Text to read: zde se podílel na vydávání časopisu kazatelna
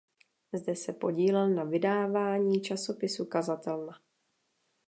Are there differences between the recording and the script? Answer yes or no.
no